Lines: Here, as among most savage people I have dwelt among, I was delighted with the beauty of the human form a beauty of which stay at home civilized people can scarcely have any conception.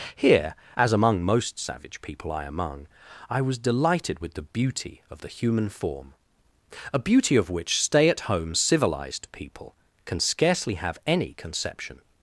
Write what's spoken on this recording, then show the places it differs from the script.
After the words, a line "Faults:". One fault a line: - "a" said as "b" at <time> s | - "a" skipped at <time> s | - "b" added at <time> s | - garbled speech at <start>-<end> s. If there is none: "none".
Here, as among most savage people I among, I was delighted with the beauty of the human form a beauty of which stay at home civilized people can scarcely have any conception.
Faults:
- "have dwelt" skipped at 2.4 s